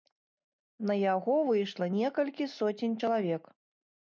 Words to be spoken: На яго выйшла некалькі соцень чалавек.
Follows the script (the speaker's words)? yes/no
yes